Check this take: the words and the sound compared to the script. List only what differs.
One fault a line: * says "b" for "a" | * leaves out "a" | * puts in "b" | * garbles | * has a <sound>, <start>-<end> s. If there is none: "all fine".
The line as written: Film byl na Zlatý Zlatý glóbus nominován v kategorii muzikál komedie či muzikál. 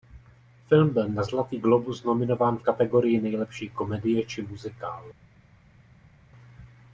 * leaves out "Zlatý"
* says "nejlepší" for "muzikál"